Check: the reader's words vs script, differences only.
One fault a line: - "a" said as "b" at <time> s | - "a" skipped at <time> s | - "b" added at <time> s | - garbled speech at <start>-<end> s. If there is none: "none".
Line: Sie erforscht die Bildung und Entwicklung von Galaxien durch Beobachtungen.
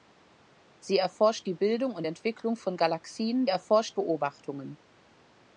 - "durch" said as "erforscht" at 3.5 s